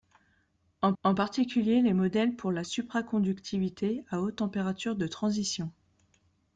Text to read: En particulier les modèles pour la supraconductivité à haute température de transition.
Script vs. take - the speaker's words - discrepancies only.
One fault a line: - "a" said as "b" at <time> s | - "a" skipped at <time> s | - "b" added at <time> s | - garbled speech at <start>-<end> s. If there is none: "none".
- "en" added at 1.0 s